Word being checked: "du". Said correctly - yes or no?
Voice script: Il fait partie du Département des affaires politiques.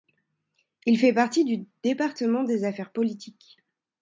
yes